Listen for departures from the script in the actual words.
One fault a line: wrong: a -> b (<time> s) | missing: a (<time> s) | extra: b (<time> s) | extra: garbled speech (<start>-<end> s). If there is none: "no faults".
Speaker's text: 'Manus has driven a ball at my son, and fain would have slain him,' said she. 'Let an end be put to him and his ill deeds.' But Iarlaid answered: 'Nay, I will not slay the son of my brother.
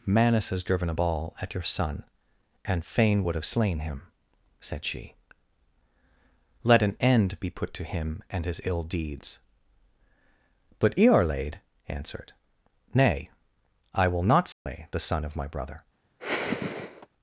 wrong: my -> your (1.5 s)